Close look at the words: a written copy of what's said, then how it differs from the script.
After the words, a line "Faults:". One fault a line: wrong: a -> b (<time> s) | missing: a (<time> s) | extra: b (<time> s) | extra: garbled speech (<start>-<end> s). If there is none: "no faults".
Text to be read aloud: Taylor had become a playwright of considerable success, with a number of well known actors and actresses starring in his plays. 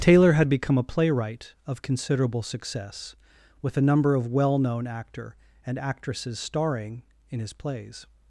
Taylor had become a playwright of considerable success, with a number of well known actor and actresses starring in his plays.
Faults:
wrong: actors -> actor (4.9 s)